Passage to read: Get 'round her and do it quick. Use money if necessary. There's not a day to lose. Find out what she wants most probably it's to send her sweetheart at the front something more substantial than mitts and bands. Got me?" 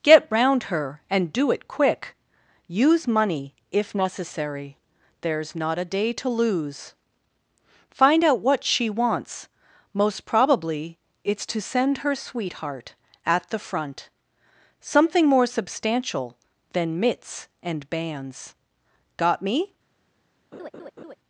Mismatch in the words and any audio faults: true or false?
true